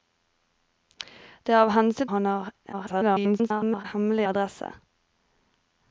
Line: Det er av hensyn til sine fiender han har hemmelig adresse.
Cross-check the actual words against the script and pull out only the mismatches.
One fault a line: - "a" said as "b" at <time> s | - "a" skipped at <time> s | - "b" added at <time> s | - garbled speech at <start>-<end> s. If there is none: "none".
- "til sine fiender" skipped at 2.1 s
- garbled speech at 2.7-3.8 s